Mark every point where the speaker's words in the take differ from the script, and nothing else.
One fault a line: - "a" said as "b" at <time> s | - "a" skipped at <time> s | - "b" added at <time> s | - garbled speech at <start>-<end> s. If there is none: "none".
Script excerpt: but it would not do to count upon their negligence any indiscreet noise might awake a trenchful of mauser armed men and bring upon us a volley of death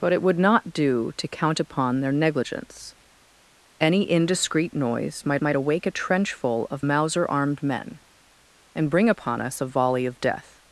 - "might" added at 5.4 s